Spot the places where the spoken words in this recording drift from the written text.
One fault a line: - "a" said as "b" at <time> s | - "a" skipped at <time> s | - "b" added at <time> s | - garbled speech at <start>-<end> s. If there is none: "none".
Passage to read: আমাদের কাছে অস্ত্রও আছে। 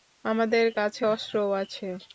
none